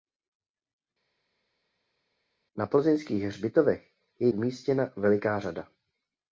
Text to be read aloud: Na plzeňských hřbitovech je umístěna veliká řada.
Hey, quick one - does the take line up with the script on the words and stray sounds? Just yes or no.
yes